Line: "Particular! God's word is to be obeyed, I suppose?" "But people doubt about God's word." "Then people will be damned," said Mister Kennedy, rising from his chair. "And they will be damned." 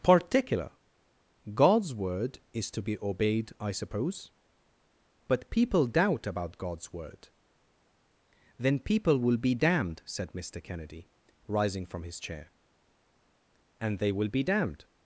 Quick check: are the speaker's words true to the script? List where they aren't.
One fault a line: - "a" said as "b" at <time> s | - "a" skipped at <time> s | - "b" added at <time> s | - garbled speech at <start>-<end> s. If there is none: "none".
none